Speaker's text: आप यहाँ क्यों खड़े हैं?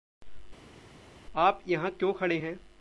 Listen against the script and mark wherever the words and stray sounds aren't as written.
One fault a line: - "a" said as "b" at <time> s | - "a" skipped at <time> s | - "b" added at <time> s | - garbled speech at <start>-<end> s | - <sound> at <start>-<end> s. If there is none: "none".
none